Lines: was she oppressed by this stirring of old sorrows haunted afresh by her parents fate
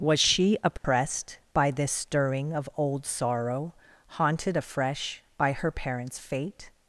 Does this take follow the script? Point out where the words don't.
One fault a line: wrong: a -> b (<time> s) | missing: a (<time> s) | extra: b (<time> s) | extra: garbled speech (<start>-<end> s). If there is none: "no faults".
wrong: sorrows -> sorrow (3.0 s)